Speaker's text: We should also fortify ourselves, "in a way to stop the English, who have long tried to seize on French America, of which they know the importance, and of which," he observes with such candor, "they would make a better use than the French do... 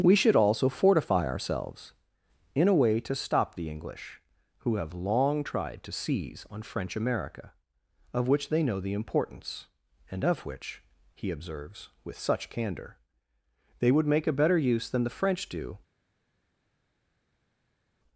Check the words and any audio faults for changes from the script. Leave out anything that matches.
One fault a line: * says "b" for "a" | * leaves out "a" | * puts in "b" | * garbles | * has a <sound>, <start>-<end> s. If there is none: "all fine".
all fine